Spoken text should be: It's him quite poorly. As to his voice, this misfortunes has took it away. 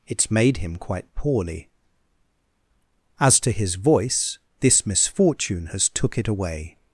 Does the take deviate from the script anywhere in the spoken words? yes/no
yes